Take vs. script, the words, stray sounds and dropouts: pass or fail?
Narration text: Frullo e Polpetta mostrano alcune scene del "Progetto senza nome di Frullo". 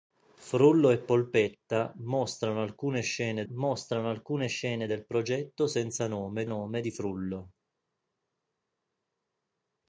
fail